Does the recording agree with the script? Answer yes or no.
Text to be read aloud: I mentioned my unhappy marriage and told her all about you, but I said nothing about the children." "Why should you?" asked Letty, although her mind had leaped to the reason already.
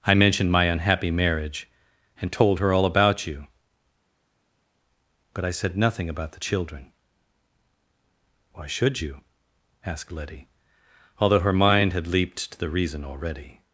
yes